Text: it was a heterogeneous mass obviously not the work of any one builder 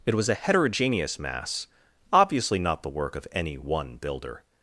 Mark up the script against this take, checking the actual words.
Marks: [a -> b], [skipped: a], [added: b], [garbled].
it was a heterogeneous mass obviously not the work of any one builder